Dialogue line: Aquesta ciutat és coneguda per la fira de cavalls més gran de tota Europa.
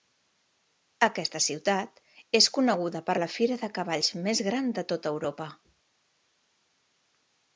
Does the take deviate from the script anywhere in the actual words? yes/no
no